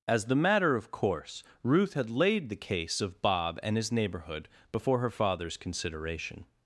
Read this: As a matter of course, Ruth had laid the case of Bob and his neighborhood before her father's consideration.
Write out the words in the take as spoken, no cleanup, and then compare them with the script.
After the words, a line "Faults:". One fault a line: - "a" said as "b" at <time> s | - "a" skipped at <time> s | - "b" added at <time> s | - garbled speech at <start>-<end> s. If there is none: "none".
As the matter of course, Ruth had laid the case of Bob and his neighborhood before her father's consideration.
Faults:
- "a" said as "the" at 0.2 s